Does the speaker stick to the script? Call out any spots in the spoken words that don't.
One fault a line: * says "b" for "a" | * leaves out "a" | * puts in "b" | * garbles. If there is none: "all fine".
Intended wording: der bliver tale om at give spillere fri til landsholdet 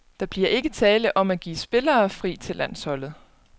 * puts in "ikke"